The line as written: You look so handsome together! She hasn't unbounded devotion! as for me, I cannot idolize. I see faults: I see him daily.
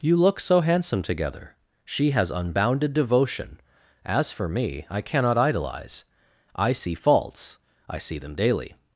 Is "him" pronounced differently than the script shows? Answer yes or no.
yes